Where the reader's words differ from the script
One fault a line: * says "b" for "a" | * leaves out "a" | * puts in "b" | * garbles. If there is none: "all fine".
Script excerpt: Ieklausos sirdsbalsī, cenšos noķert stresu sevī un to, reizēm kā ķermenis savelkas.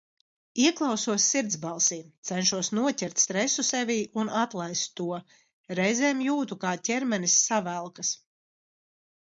* puts in "atlaist"
* puts in "jūtu"